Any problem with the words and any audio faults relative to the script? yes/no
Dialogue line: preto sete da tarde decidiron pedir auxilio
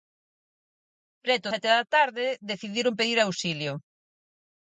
no